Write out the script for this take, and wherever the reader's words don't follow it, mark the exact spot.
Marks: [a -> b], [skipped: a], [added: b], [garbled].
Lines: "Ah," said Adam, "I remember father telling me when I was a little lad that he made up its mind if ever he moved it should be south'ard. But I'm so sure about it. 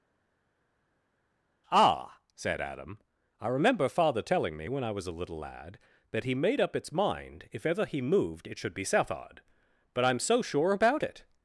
"Ah," said Adam, "I remember father telling me when I was a little lad that he made up its mind if ever he moved it should be south'ard. But I'm so sure about it.